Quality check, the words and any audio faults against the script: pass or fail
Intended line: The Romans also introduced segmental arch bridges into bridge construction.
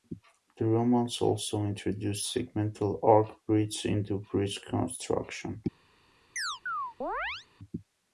fail